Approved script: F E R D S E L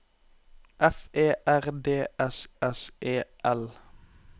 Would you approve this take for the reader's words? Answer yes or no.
no